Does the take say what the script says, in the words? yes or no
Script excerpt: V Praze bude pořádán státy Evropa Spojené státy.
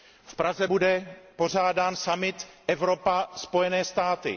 no